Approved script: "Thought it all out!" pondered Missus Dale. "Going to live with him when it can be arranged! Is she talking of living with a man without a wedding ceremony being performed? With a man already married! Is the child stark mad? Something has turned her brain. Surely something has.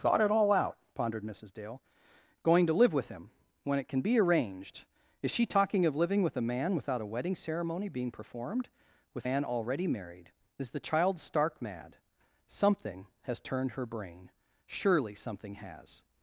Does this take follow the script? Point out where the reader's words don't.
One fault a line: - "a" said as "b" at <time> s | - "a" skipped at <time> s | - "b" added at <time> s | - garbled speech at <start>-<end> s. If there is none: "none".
- "a" skipped at 9.3 s